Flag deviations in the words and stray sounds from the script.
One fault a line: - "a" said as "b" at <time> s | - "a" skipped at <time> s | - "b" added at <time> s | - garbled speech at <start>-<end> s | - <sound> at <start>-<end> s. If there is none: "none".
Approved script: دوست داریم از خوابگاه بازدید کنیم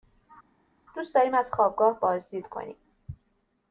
none